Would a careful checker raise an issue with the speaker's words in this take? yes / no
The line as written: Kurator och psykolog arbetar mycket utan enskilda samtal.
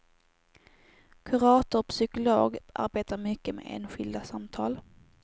yes